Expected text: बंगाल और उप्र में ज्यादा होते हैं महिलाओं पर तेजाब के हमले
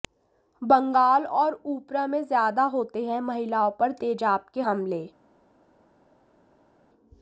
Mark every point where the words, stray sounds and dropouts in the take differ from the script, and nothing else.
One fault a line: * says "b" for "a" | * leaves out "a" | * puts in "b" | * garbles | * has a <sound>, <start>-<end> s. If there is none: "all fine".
all fine